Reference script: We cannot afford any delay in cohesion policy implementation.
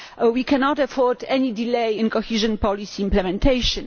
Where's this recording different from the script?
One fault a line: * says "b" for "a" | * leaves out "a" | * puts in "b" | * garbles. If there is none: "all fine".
all fine